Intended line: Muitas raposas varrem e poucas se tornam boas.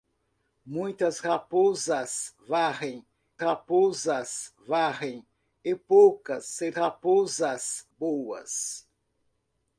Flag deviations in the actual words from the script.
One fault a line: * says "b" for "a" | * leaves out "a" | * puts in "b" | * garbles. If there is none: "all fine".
* puts in "raposas varrem"
* says "raposas" for "tornam"